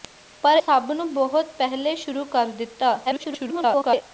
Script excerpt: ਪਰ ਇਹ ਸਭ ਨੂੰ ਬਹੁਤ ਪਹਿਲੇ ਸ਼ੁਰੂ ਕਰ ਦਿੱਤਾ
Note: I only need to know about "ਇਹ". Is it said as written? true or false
false